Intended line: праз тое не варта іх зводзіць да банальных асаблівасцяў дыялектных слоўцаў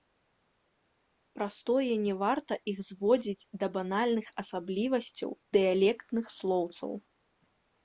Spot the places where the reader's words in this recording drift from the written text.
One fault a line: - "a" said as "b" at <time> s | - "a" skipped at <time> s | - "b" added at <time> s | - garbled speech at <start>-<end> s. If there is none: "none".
none